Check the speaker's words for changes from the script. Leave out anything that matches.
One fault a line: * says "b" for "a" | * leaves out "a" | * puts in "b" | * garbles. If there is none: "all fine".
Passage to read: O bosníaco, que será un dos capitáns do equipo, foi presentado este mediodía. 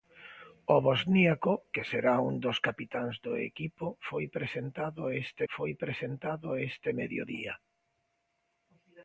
* puts in "foi presentado este"